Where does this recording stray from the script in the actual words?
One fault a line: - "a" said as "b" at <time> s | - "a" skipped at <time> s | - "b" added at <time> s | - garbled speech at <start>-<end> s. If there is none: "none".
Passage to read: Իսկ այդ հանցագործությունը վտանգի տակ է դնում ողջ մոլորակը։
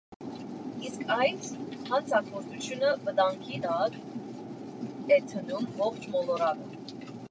none